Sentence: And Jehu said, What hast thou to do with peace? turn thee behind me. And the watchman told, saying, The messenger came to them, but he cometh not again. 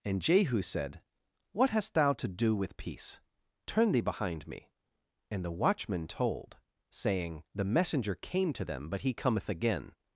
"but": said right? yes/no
yes